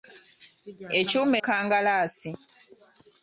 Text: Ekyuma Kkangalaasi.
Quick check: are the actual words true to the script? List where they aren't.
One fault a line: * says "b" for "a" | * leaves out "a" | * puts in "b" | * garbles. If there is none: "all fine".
all fine